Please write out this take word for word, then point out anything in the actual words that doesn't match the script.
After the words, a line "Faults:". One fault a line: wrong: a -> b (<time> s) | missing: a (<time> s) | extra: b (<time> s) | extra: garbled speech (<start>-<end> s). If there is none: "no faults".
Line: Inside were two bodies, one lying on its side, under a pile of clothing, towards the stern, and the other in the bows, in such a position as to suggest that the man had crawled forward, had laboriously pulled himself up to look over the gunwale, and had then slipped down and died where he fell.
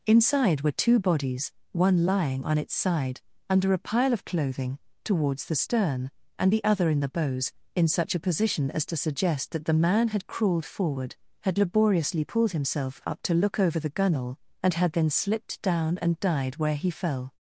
Inside were two bodies, one lying on its side, under a pile of clothing, towards the stern, and the other in the bows, in such a position as to suggest that the man had crawled forward, had laboriously pulled himself up to look over the gunwale, and had then slipped down and died where he fell.
Faults:
no faults